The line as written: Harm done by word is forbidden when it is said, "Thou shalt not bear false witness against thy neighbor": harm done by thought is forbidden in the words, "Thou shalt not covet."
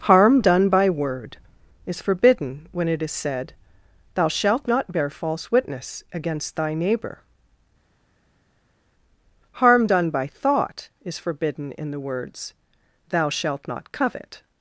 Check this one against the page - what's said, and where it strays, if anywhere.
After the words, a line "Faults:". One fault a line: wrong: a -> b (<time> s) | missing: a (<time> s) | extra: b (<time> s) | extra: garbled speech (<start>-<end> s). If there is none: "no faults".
Harm done by word is forbidden when it is said, "Thou shalt not bear false witness against thy neighbor": harm done by thought is forbidden in the words, "Thou shalt not covet."
Faults:
no faults